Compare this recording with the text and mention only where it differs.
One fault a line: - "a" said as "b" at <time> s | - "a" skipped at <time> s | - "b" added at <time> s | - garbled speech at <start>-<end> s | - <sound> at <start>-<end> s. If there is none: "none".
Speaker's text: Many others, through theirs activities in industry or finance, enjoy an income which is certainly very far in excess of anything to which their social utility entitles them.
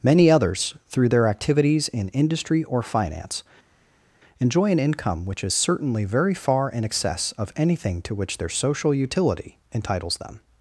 - "theirs" said as "their" at 1.1 s